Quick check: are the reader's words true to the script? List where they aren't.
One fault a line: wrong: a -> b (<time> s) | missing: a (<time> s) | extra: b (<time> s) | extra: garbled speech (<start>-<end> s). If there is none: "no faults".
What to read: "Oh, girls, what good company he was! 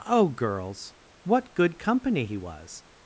no faults